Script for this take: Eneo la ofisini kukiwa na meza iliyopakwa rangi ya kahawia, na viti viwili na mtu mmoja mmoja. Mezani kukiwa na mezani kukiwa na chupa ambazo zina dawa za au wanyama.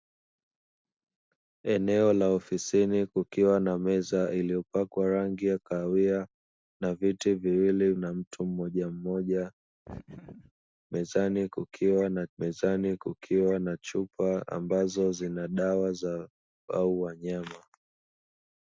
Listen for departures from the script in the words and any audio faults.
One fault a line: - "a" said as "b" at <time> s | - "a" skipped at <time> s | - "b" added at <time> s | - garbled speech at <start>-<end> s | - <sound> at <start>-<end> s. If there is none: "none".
- laugh at 9.8-10.5 s